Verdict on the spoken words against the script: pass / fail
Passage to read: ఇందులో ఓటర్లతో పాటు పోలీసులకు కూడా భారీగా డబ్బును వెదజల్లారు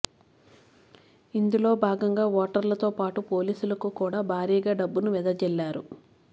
fail